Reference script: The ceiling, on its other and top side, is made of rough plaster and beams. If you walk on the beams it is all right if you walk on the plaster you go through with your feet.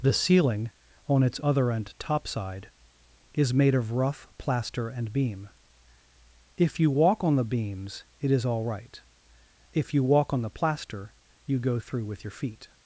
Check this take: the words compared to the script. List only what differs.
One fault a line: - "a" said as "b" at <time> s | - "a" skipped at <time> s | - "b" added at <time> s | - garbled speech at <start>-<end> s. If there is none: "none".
- "beams" said as "beam" at 5.1 s